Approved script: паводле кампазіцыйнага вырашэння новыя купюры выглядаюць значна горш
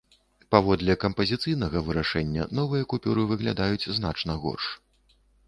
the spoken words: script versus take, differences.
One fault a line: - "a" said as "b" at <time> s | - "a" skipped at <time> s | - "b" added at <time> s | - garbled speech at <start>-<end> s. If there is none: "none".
none